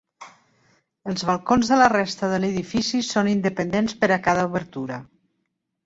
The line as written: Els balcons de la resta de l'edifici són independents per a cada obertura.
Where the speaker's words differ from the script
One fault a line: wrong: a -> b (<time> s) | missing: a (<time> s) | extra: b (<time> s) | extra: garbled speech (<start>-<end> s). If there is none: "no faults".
no faults